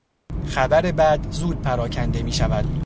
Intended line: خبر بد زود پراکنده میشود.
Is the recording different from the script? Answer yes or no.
no